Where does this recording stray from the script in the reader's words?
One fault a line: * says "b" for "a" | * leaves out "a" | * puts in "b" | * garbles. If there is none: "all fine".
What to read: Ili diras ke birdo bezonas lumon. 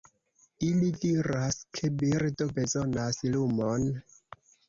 all fine